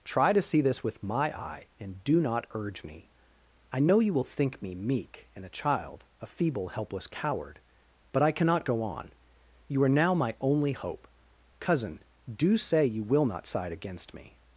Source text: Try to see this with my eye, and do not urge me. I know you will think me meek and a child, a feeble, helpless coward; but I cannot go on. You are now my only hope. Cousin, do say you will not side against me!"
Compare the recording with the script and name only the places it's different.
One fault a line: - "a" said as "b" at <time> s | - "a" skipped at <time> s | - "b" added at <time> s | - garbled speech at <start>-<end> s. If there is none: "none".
none